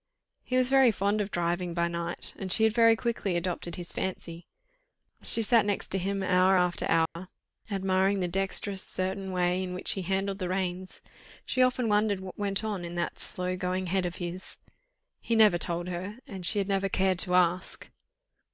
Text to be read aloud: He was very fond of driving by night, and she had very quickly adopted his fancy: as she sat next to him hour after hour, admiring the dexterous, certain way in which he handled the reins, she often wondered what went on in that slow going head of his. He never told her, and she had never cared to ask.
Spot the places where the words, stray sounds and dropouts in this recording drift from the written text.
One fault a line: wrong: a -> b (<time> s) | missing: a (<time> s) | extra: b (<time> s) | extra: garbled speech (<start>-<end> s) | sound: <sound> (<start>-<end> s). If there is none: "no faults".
sound: dropout (7.1-7.2 s)